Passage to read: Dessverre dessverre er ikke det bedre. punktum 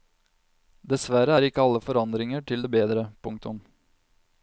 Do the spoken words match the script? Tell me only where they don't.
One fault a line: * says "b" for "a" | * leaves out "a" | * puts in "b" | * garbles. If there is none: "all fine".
* leaves out "dessverre"
* puts in "alle forandringer til"